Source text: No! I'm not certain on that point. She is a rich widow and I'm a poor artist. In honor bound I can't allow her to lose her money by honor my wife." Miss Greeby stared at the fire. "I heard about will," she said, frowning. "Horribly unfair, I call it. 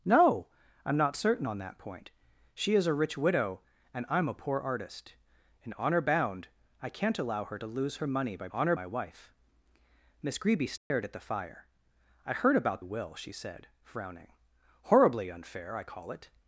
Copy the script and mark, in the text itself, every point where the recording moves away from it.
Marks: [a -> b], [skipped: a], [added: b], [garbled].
No! I'm not certain on that point. She is a rich widow and I'm a poor artist. In honor bound I can't allow her to lose her money by honor my wife." Miss Greeby stared at the fire. "I heard about will," she said, frowning. "Horribly unfair, I call it.